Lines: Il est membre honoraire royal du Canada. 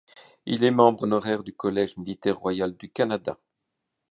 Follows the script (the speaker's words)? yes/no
no